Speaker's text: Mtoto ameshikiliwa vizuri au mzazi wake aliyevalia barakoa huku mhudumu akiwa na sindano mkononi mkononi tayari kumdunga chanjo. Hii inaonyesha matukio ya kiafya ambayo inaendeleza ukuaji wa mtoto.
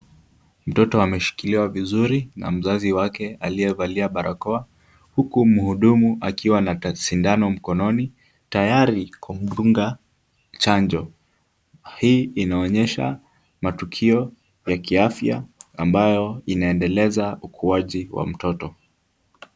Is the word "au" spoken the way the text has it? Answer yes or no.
no